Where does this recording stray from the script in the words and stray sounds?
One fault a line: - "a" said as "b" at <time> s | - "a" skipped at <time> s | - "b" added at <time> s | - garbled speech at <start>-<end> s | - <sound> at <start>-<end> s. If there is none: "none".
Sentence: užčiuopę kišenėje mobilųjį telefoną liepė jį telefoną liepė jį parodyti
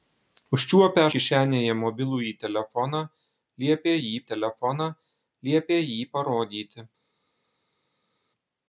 none